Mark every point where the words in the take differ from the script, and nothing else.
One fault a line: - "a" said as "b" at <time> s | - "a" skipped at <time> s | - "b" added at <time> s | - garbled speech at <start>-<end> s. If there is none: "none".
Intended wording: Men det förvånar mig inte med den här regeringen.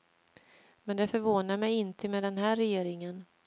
none